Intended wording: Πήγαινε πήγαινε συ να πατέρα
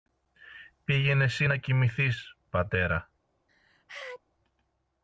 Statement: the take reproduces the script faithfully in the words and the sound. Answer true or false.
false